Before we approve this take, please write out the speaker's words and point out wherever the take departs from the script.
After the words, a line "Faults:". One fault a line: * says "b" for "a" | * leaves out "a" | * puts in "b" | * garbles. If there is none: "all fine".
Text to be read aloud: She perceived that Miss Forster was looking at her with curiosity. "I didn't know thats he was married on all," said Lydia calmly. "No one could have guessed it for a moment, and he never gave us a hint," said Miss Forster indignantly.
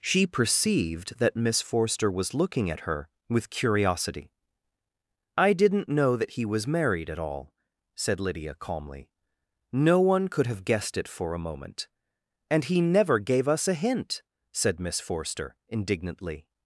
She perceived that Miss Forster was looking at her with curiosity. "I didn't know that he was married at all," said Lydia calmly. "No one could have guessed it for a moment, and he never gave us a hint," said Miss Forster indignantly.
Faults:
* says "that" for "thats"
* says "at" for "on"